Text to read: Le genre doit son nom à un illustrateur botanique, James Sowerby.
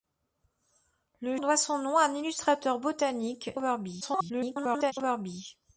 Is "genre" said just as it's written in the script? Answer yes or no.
no